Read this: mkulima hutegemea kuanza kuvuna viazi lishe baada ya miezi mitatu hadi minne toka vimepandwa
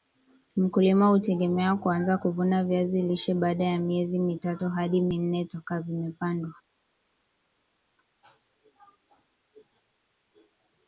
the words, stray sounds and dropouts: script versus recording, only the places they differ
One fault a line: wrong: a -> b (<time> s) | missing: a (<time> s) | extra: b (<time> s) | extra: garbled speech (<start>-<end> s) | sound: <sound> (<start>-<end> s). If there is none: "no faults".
no faults